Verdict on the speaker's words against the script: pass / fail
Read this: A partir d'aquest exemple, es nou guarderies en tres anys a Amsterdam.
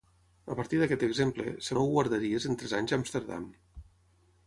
pass